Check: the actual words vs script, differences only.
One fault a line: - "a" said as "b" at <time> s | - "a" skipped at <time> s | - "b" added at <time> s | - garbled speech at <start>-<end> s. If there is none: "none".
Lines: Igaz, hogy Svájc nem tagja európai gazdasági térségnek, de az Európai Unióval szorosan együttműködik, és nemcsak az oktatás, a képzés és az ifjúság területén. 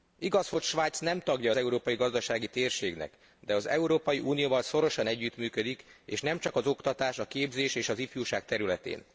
none